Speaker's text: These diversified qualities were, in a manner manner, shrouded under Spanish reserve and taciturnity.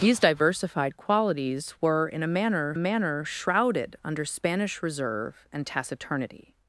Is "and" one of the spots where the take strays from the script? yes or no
no